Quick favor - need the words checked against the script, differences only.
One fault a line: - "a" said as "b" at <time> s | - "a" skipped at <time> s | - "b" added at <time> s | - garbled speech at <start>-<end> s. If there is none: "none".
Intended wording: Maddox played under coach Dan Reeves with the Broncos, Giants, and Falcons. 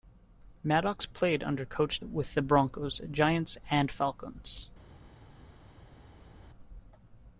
- "Dan Reeves" skipped at 2.0 s